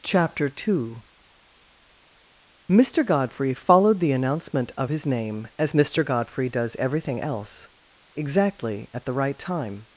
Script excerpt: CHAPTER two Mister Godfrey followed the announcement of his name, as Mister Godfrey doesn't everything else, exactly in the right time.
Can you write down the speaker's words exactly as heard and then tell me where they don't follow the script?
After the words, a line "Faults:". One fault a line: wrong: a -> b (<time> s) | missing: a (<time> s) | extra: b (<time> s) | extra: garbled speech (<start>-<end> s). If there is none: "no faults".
CHAPTER two Mister Godfrey followed the announcement of his name, as Mister Godfrey does everything else, exactly at the right time.
Faults:
wrong: doesn't -> does (6.5 s)
wrong: in -> at (8.9 s)